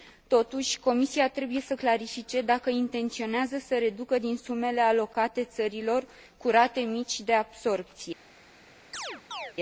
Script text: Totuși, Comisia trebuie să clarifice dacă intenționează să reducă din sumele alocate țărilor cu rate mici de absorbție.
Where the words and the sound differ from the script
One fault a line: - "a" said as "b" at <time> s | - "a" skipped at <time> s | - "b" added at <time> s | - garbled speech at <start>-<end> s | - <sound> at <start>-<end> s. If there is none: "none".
- chirp at 8.9-9.5 s